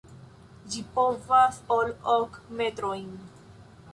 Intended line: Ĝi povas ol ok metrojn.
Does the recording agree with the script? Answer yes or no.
yes